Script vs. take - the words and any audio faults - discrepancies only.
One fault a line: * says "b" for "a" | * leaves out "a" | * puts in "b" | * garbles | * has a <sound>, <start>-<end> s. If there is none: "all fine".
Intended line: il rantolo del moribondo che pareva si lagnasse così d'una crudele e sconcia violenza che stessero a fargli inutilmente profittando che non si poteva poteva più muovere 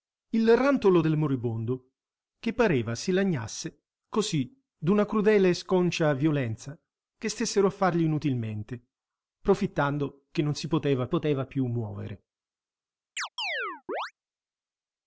* has a chirp, 13.2-14.1 s